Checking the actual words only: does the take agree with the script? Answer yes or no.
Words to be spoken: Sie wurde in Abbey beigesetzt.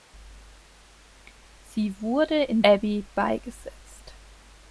yes